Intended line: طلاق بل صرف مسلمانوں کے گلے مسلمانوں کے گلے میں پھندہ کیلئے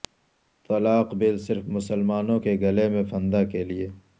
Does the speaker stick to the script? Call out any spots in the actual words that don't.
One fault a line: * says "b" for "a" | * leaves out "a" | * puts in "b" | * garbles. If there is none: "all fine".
* leaves out "مسلمانوں کے گلے"